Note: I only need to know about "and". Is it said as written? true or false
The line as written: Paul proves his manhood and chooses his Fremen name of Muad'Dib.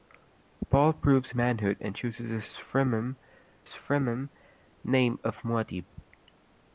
true